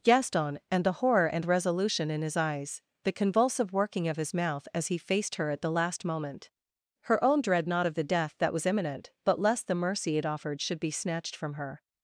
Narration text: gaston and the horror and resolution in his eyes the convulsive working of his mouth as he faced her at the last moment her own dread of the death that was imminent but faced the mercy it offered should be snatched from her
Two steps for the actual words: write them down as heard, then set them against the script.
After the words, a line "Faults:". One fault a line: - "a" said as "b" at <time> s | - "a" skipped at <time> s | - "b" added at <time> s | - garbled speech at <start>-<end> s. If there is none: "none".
gaston and the horror and resolution in his eyes the convulsive working of his mouth as he faced her at the last moment her own dread not of the death that was imminent but lest the mercy it offered should be snatched from her
Faults:
- "not" added at 7.7 s
- "faced" said as "lest" at 9.4 s